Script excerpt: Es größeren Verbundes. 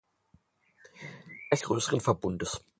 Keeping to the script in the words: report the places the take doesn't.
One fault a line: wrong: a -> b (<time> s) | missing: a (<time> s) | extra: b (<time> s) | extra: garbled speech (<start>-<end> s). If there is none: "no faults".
no faults